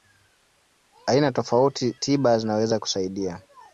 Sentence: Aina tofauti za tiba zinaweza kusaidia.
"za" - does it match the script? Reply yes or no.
no